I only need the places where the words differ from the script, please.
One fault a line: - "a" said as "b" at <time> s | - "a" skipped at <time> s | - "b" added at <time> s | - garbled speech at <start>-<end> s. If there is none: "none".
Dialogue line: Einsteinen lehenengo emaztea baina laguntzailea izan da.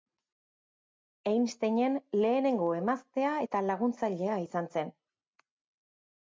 - "baina" said as "eta" at 3.5 s
- "da" said as "zen" at 4.8 s